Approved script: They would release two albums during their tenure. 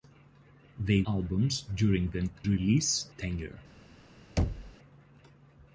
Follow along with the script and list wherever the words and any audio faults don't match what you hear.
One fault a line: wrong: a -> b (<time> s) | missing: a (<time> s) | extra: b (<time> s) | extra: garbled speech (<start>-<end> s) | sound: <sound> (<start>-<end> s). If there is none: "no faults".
missing: would release two (1.0 s)
wrong: their -> release (2.5 s)
sound: thud (4.4-4.7 s)